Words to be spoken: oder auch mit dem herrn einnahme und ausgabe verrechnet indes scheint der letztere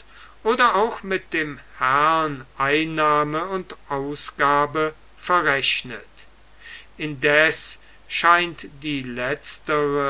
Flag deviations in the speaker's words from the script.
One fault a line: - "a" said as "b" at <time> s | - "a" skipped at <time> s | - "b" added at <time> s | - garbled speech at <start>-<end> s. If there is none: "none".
- "der" said as "die" at 8.7 s